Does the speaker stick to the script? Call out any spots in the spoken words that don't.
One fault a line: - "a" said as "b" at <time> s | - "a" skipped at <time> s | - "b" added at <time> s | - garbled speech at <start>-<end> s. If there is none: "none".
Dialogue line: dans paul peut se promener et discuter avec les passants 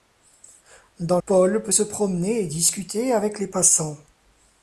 none